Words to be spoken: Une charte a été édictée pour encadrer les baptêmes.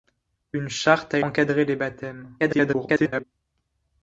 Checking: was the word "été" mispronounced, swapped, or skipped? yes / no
yes